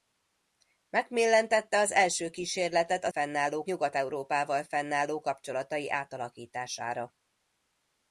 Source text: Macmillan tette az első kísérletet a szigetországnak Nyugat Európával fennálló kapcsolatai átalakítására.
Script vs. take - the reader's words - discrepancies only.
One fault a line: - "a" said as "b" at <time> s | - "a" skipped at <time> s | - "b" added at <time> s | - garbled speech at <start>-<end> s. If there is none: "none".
- "szigetországnak" said as "fennálló" at 3.1 s